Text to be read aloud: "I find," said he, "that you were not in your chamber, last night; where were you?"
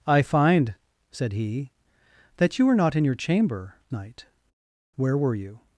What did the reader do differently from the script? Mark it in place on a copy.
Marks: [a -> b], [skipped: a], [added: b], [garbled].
"I find," said he, "that you were not in your chamber, [skipped: last] night; where were you?"